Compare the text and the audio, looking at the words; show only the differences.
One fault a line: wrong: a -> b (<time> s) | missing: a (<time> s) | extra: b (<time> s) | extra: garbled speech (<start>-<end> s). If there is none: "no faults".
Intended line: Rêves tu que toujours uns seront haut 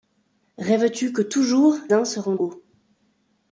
no faults